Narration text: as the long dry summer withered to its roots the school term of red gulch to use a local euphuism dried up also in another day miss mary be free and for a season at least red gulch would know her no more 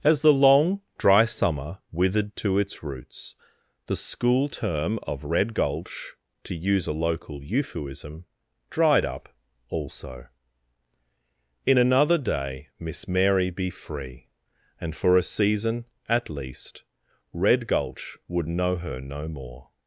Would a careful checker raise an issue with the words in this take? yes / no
no